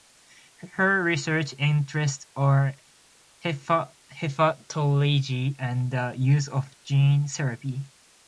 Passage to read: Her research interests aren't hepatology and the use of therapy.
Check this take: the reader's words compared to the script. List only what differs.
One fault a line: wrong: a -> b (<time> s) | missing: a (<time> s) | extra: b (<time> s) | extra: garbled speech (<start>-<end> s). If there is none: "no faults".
wrong: aren't -> are (2.4 s)
extra: gene (6.8 s)